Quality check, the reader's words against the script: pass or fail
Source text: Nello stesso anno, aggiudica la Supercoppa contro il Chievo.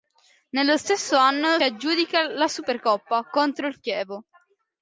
pass